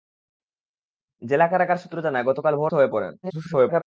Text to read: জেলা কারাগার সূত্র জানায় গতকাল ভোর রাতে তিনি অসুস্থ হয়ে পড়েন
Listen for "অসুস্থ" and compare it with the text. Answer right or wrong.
wrong